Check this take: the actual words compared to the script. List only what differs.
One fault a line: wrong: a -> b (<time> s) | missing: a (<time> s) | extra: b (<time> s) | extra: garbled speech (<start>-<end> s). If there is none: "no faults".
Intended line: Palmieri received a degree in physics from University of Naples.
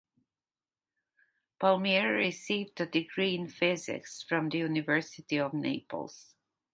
extra: the (4.5 s)